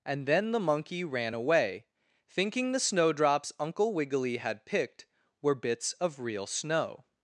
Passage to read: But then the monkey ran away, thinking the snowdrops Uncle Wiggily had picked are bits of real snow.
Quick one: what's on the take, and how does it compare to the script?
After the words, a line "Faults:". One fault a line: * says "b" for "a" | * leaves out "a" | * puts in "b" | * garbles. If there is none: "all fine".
And then the monkey ran away, thinking the snowdrops Uncle Wiggily had picked were bits of real snow.
Faults:
* says "And" for "But"
* says "were" for "are"